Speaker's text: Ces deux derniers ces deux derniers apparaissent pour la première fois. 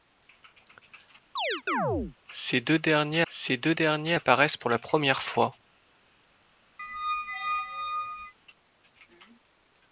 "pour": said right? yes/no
yes